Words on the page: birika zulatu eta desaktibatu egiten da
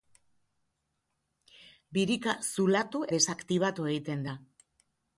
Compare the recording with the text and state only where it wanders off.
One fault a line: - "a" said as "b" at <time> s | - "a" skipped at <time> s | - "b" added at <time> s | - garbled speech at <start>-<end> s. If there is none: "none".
- "eta" skipped at 3.0 s